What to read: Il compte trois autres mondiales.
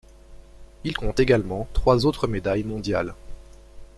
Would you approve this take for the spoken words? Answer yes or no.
no